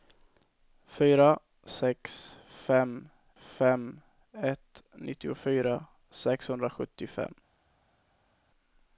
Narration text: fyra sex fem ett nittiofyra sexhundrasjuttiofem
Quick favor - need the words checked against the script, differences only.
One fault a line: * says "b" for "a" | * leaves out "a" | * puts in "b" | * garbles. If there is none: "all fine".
* puts in "fem"